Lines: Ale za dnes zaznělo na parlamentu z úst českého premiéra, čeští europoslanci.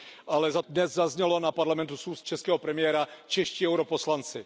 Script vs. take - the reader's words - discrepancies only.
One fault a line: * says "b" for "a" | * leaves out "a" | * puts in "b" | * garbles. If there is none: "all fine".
all fine